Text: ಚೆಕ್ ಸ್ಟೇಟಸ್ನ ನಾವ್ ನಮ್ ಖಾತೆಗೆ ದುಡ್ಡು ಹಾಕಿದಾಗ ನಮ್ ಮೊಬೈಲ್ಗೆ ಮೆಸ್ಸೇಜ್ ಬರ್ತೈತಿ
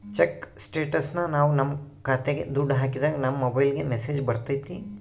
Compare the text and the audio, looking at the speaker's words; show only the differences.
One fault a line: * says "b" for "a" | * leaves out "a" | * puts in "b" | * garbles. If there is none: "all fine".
all fine